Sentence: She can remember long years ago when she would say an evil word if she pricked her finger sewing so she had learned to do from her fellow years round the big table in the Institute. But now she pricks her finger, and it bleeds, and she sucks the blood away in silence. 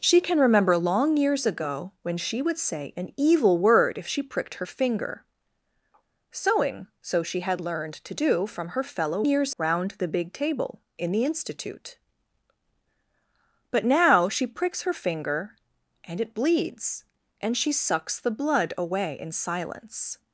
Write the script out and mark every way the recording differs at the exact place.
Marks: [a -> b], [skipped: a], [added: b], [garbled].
She can remember long years ago when she would say an evil word if she pricked her finger sewing so she had learned to do from her fellow years round the big table in the Institute. But now she pricks her finger, and it bleeds, and she sucks the blood away in silence.